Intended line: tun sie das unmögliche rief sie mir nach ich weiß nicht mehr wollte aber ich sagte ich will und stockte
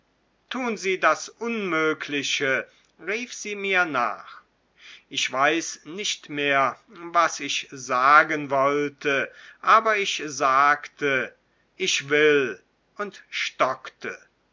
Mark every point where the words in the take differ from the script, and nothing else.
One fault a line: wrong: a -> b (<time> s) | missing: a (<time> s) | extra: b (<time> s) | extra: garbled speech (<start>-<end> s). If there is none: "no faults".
extra: was ich sagen (6.9 s)